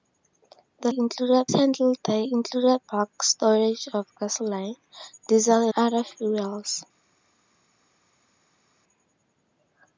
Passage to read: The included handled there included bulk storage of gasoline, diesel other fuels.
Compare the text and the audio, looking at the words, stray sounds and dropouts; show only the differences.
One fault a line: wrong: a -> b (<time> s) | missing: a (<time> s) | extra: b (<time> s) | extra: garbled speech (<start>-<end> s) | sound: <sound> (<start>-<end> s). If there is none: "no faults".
no faults